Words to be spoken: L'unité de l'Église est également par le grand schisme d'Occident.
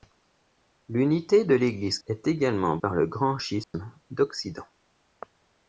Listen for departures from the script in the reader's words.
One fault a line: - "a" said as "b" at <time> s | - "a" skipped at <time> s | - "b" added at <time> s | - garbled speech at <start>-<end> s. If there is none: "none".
none